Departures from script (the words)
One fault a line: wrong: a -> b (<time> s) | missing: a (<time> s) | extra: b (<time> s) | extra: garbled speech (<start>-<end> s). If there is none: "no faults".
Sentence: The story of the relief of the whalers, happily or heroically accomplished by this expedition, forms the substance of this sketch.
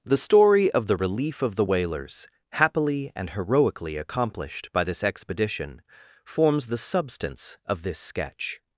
wrong: or -> and (3.2 s)